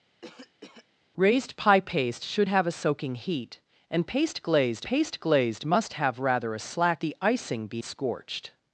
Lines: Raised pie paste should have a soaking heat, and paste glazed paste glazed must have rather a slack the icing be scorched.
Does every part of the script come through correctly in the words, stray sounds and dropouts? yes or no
no